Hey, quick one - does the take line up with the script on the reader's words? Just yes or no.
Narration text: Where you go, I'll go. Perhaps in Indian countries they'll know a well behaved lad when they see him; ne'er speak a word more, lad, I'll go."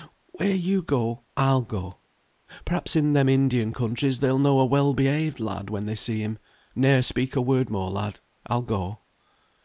no